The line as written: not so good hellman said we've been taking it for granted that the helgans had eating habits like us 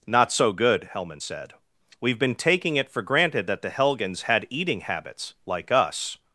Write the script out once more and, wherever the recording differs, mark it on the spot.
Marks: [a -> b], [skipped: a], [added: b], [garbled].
not so good hellman said we've been taking it for granted that the helgans had eating habits like us